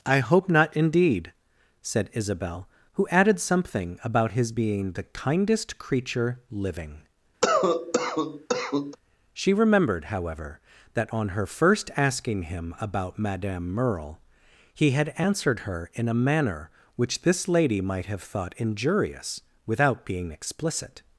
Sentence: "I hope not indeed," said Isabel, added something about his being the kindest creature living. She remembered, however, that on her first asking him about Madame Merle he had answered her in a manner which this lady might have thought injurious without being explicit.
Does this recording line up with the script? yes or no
no